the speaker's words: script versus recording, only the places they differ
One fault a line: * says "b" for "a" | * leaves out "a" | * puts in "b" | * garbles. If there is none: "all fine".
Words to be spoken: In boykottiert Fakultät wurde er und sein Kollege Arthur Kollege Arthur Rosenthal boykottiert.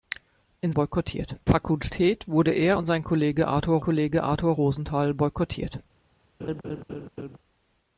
all fine